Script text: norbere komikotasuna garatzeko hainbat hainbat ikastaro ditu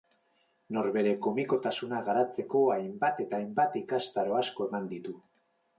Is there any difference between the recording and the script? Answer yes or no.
yes